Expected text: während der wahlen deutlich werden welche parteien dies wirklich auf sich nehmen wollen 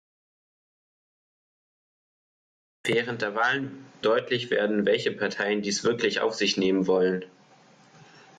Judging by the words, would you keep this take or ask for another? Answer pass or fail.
pass